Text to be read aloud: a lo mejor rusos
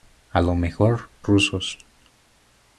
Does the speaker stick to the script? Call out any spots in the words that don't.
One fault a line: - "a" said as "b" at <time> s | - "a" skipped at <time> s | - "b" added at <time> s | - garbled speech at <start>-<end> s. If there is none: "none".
none